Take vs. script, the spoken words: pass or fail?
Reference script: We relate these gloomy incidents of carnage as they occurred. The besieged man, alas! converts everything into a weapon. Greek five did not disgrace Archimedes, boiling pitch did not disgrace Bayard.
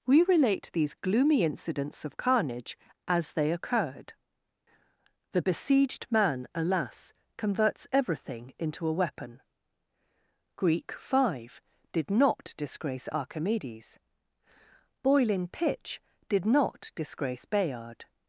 pass